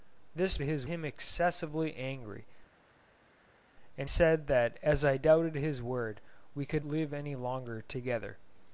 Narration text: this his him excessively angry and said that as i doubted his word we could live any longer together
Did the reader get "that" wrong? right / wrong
right